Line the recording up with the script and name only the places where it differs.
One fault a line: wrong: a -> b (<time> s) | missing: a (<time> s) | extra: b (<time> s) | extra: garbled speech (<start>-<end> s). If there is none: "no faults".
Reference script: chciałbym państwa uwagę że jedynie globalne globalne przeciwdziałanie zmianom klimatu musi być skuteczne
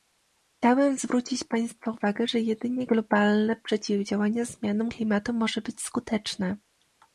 extra: zwrócić (1.0 s)
missing: globalne (3.6 s)
wrong: musi -> może (5.3 s)